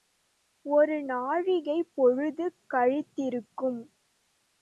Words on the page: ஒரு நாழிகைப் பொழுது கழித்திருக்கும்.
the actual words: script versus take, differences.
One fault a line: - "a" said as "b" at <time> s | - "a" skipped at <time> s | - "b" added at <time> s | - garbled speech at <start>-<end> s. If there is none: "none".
none